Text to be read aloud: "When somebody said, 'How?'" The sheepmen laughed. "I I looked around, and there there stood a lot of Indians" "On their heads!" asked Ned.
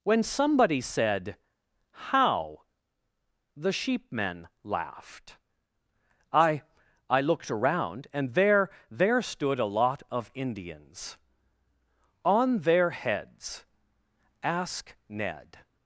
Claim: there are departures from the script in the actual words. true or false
true